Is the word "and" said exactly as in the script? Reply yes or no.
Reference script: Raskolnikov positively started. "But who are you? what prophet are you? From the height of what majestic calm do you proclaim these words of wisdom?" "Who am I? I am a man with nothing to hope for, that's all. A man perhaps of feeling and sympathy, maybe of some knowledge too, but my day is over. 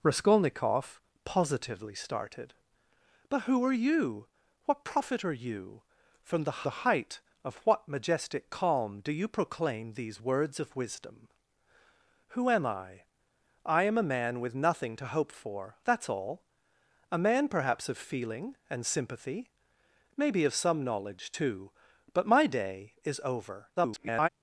yes